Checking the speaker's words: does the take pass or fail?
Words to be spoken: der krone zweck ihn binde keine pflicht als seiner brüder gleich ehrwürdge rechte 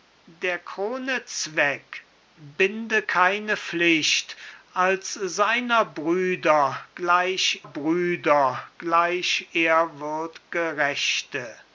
fail